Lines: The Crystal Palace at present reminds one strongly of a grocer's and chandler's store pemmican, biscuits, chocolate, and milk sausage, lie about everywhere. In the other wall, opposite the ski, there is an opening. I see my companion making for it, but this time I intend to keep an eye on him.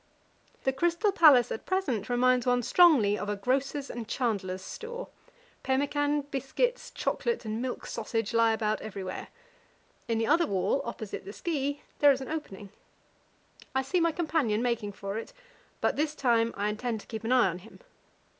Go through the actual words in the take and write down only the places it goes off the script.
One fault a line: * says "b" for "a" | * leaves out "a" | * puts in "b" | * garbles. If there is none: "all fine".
all fine